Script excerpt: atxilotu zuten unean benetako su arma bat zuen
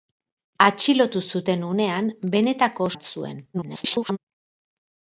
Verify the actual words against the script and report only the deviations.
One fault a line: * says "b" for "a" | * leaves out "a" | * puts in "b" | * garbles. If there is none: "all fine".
* leaves out "su arma"
* garbles